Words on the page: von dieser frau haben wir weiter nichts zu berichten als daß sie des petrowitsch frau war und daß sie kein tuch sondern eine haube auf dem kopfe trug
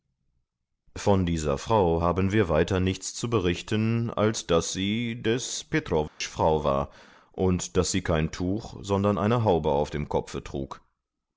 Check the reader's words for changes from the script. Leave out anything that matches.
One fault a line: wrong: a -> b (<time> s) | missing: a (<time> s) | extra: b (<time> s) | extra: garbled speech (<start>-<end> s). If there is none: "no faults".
no faults